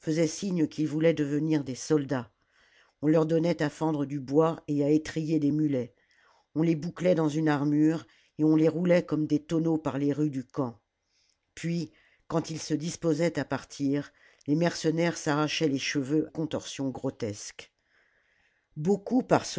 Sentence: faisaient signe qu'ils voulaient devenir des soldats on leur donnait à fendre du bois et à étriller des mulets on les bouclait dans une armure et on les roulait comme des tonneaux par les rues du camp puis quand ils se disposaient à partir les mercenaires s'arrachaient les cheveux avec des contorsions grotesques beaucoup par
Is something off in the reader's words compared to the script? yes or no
yes